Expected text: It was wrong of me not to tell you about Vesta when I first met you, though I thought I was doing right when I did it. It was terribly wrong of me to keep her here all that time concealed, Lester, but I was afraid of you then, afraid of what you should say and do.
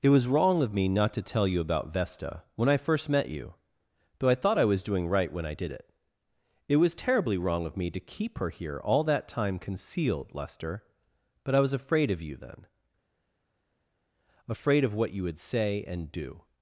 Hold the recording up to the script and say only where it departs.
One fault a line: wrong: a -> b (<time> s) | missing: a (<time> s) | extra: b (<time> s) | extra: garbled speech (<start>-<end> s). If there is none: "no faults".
wrong: should -> would (15.2 s)